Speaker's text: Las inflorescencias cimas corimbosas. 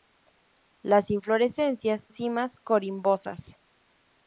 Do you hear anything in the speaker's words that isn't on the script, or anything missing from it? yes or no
no